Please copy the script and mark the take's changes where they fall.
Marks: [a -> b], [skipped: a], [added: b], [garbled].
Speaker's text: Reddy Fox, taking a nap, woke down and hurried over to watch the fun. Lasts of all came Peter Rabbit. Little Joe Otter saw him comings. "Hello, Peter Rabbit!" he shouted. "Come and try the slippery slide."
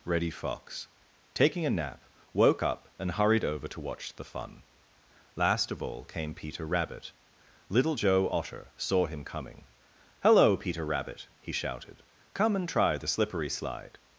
Reddy Fox, taking a nap, woke [down -> up] and hurried over to watch the fun. [Lasts -> Last] of all came Peter Rabbit. Little Joe Otter saw him [comings. -> coming] "Hello, Peter Rabbit!" he shouted. "Come and try the slippery slide."